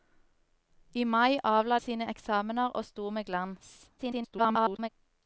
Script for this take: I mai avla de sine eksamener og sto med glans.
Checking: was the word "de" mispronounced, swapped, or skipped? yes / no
yes